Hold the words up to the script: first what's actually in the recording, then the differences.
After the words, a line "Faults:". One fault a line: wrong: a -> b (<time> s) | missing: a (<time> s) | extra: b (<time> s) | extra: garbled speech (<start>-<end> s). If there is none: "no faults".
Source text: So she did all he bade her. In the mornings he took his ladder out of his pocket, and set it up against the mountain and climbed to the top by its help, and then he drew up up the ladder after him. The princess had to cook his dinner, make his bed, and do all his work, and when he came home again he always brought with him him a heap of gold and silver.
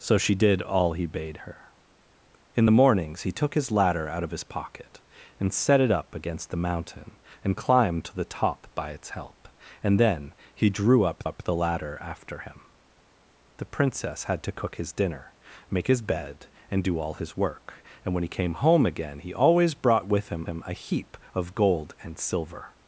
So she did all he bade her. In the mornings he took his ladder out of his pocket, and set it up against the mountain and climbed to the top by its help, and then he drew up up the ladder after him. The princess had to cook his dinner, make his bed, and do all his work, and when he came home again he always brought with him him a heap of gold and silver.
Faults:
no faults